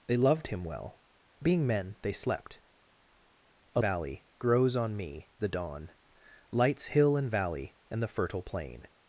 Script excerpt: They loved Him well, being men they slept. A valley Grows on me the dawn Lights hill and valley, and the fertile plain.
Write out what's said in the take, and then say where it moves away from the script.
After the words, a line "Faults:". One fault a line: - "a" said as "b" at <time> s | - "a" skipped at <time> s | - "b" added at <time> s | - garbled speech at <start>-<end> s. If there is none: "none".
They loved Him well, being men they slept. A valley Grows on me the dawn Lights hill and valley, and the fertile plain.
Faults:
none